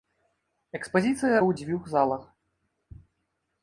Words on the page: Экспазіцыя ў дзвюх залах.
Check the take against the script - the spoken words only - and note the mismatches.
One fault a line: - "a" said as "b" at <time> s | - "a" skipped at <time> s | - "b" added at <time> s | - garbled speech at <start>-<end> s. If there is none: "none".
none